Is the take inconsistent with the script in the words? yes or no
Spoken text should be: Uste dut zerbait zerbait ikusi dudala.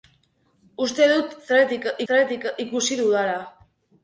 no